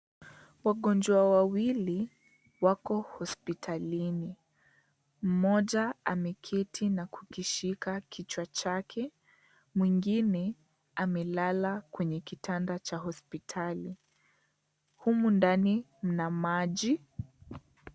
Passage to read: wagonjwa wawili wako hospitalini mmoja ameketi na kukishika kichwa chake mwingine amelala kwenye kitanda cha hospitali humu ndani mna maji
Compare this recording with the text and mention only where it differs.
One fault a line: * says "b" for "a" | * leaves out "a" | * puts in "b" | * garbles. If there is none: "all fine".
all fine